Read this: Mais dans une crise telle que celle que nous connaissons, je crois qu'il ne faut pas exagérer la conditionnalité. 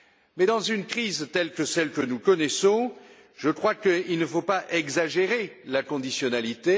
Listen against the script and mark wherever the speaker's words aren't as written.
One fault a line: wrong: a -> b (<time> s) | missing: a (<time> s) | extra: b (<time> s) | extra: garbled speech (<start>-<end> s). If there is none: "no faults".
no faults